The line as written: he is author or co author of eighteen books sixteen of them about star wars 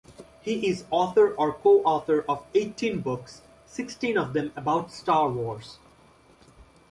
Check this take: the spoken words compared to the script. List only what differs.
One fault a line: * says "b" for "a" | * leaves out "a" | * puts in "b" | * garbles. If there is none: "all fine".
all fine